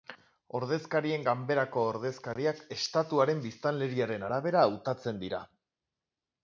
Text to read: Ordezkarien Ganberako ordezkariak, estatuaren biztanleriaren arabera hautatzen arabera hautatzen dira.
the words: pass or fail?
fail